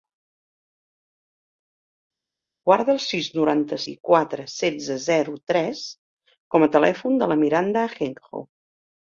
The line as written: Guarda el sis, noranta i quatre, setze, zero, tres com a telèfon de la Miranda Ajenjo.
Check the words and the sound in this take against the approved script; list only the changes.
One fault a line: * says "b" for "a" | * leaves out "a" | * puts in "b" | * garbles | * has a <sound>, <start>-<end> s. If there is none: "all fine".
all fine